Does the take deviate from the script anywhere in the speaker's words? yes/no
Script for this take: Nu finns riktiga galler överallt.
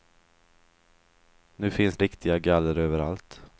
no